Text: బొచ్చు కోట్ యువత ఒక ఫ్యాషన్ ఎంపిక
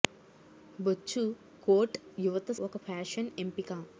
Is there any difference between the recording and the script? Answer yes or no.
no